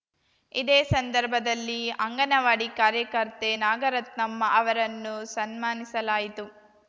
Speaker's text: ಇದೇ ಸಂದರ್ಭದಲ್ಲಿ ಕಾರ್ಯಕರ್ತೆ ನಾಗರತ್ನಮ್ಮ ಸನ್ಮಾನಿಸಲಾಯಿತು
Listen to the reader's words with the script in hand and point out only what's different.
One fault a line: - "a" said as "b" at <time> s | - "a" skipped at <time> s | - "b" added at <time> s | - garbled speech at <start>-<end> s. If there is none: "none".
- "ಅಂಗನವಾಡಿ" added at 2.0 s
- "ಅವರನ್ನು" added at 4.5 s